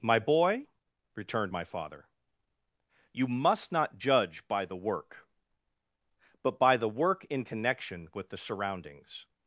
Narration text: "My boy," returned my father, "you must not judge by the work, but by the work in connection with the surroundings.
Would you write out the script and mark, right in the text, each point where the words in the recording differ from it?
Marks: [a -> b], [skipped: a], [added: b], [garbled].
"My boy," returned my father, "you must not judge by the work, but by the work in connection with the surroundings.